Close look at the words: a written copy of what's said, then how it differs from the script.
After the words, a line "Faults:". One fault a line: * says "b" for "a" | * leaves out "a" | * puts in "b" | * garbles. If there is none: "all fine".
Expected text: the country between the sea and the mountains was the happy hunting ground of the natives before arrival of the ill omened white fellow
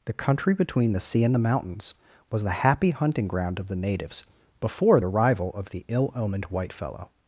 the country between the sea and the mountains was the happy hunting ground of the natives before arrival of the ill omened white fellow
Faults:
all fine